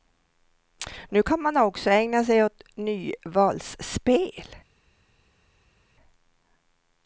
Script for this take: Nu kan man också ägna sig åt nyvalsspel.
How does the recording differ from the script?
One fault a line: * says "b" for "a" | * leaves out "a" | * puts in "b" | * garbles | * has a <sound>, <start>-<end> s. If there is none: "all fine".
all fine